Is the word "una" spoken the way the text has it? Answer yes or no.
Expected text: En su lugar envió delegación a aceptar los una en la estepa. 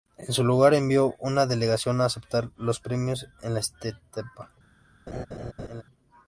no